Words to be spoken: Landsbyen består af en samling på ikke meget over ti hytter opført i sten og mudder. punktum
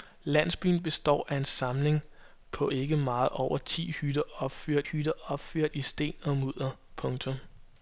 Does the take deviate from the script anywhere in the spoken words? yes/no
yes